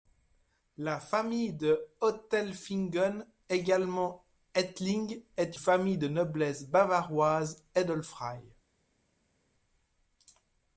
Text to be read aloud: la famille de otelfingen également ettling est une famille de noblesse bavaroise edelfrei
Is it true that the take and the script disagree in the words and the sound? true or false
true